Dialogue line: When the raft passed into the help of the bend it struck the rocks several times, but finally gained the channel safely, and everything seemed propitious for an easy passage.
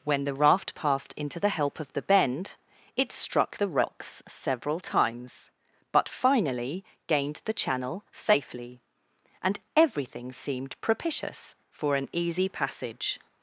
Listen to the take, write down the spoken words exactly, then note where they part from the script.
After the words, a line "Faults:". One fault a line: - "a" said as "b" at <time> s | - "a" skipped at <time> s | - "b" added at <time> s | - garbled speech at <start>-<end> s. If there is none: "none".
When the raft passed into the help of the bend it struck the rocks several times, but finally gained the channel safely, and everything seemed propitious for an easy passage.
Faults:
none